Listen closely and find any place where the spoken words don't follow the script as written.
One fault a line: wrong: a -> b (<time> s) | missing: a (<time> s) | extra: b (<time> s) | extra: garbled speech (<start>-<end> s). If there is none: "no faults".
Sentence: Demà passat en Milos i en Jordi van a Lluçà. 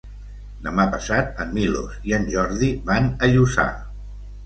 no faults